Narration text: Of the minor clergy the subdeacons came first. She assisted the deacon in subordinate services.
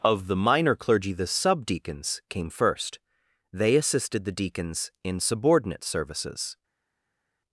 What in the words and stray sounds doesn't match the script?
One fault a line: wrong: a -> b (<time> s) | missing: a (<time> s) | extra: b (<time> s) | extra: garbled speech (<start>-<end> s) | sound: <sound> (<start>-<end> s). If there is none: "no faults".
wrong: She -> They (3.5 s)
wrong: deacon -> deacons (4.3 s)